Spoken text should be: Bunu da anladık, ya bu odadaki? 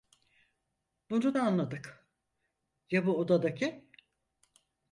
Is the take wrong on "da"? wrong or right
right